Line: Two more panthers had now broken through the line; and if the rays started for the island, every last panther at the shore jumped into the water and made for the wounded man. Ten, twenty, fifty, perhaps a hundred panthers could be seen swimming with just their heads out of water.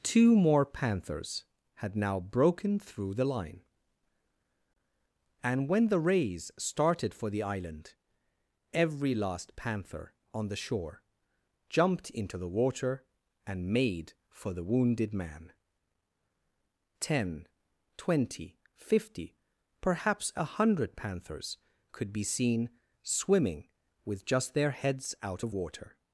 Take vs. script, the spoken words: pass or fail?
fail